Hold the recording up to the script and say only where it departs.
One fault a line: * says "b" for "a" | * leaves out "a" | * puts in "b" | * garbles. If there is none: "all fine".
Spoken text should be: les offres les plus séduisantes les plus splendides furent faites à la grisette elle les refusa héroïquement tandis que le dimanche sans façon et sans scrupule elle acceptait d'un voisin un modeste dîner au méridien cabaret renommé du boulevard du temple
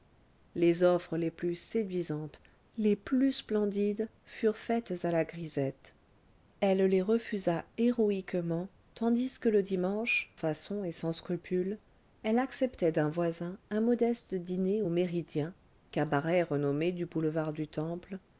* leaves out "sans"